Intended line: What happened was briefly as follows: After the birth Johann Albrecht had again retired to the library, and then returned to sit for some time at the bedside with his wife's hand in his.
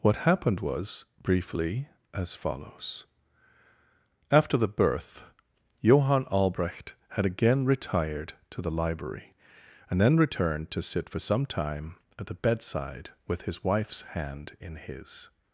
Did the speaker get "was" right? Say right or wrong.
right